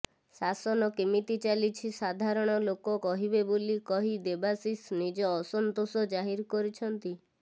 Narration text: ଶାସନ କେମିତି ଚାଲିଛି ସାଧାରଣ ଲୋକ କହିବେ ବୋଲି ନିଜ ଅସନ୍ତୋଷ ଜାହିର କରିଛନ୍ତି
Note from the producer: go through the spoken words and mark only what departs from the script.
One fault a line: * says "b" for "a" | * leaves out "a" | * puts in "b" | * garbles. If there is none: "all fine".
* puts in "କହି ଦେବାଶିଷ"